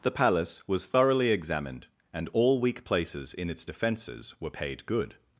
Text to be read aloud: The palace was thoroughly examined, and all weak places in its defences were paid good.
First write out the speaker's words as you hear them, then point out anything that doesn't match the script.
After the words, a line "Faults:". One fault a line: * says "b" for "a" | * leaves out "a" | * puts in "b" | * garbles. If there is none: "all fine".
The palace was thoroughly examined, and all weak places in its defences were paid good.
Faults:
all fine